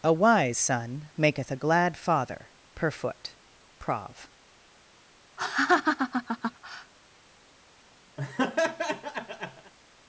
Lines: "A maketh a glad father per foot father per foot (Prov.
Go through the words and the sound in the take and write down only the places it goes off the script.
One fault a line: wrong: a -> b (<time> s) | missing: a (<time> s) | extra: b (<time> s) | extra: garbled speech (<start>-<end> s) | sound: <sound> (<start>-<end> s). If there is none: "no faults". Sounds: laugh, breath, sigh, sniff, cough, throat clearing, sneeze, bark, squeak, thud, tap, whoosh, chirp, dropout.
extra: wise son (0.1 s)
missing: father per foot (3.3 s)
sound: laugh (5.4-6.9 s)
sound: laugh (8.2-9.7 s)